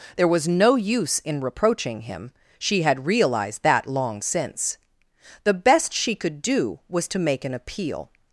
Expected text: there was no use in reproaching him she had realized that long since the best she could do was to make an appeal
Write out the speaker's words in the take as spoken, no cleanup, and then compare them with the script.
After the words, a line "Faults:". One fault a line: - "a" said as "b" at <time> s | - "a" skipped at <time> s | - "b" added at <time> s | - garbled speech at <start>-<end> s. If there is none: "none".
there was no use in reproaching him she had realized that long since the best she could do was to make an appeal
Faults:
none